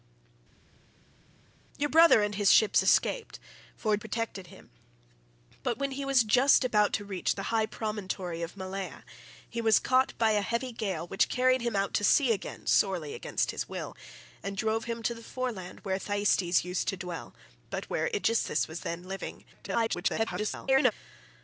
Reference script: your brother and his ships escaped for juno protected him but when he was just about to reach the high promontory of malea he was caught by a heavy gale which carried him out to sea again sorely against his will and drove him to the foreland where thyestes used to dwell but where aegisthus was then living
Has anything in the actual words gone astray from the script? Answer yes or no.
yes